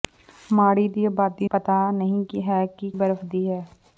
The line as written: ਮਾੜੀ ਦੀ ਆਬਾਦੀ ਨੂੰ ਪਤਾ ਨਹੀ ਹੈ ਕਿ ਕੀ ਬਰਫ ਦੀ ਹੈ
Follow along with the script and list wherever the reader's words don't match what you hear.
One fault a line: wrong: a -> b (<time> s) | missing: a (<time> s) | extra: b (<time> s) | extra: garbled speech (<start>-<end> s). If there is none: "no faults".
missing: ਨੂੰ (1.5 s)
missing: ਕੀ (2.9 s)